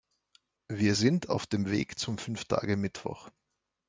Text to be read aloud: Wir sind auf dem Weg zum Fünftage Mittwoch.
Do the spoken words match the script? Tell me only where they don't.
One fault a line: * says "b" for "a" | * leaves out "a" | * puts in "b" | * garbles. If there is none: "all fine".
all fine